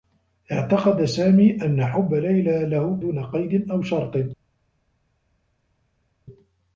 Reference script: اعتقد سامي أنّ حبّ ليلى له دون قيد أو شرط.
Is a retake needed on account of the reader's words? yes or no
no